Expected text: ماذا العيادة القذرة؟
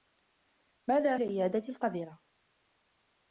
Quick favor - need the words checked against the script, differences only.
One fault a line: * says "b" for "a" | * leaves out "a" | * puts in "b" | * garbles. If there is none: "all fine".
all fine